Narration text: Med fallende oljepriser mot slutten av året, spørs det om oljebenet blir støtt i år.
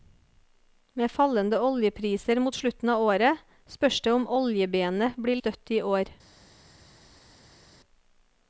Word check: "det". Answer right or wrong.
right